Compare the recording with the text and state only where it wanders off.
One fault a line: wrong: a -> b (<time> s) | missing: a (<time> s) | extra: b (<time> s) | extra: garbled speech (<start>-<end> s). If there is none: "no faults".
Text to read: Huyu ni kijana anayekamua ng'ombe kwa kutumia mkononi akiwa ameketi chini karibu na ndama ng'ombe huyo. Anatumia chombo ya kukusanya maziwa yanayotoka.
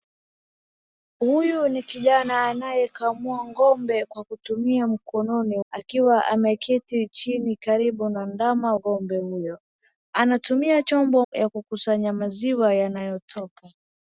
no faults